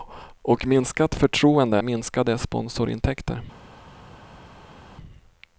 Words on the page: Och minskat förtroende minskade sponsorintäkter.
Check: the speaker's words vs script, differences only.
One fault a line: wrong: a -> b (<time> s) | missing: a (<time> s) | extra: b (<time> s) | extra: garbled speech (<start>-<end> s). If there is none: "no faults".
no faults